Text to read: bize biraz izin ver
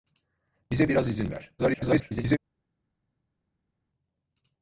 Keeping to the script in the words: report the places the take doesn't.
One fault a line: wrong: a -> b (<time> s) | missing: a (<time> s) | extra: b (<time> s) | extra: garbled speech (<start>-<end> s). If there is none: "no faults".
extra: garbled speech (1.6-2.4 s)